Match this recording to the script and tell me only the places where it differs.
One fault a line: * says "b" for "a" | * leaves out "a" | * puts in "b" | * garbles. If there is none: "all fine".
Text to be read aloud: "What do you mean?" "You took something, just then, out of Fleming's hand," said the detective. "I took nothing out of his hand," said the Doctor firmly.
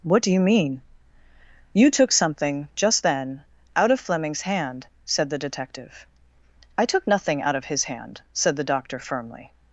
all fine